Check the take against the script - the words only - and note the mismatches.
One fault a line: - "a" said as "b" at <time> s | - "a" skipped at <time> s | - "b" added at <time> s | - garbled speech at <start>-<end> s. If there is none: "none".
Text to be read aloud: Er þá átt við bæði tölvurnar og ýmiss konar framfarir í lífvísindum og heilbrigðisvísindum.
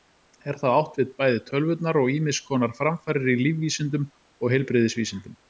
none